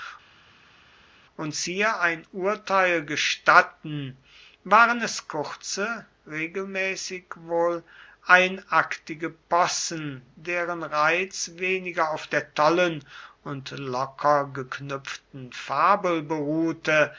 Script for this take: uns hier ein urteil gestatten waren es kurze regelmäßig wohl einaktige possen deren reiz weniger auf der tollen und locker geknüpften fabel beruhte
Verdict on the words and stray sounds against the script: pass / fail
pass